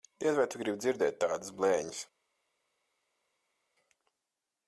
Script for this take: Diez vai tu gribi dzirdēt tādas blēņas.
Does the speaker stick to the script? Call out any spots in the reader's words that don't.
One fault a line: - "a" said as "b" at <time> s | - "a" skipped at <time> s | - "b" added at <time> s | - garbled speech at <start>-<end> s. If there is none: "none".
none